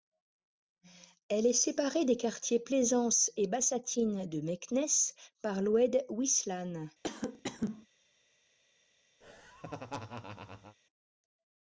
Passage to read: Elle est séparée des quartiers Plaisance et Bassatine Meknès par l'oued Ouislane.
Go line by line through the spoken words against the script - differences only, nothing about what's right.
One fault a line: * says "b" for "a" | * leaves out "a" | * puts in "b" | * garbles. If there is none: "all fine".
* puts in "de"